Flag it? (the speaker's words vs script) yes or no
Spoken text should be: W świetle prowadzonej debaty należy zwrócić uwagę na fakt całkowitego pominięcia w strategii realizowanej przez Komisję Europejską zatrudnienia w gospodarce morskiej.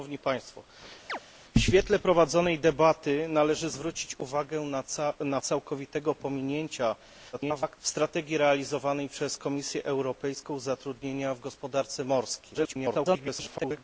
yes